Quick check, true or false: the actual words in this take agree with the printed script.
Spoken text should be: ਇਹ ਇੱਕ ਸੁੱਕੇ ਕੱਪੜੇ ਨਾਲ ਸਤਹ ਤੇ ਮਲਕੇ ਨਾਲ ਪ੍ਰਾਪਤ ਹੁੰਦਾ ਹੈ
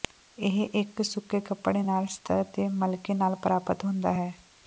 true